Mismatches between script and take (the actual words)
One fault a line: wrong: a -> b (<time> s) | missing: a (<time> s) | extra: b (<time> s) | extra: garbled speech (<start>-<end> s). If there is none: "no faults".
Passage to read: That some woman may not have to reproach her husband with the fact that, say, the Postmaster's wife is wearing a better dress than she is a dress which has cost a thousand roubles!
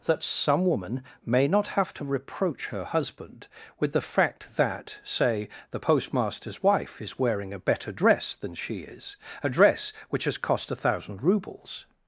no faults